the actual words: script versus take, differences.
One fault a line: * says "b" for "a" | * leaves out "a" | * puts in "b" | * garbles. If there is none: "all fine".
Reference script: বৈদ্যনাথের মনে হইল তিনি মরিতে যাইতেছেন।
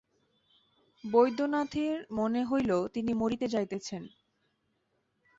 all fine